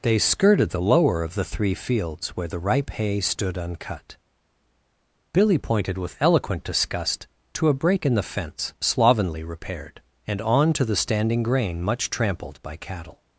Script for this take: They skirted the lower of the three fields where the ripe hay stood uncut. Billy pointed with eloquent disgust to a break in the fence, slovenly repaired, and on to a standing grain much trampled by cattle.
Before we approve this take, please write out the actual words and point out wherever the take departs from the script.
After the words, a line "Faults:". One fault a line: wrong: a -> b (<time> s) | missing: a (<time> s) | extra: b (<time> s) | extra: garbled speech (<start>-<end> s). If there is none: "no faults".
They skirted the lower of the three fields where the ripe hay stood uncut. Billy pointed with eloquent disgust to a break in the fence, slovenly repaired, and on to the standing grain much trampled by cattle.
Faults:
wrong: a -> the (10.9 s)